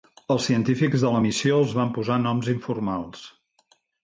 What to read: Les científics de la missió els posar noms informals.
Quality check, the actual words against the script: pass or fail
fail